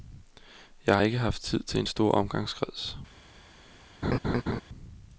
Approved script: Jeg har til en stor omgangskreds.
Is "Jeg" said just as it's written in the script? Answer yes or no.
yes